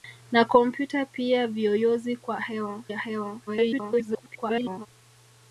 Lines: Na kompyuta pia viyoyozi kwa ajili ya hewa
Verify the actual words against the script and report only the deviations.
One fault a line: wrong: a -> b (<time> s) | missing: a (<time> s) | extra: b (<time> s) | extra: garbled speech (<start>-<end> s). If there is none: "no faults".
wrong: ajili -> hewa (2.4 s)
extra: garbled speech (3.5-4.9 s)